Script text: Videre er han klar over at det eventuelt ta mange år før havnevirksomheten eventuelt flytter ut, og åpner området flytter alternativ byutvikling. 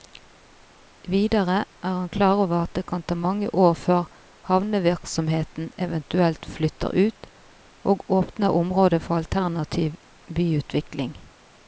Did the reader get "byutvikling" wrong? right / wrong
right